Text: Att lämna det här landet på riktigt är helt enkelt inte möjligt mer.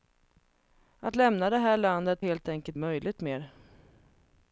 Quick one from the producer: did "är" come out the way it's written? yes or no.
no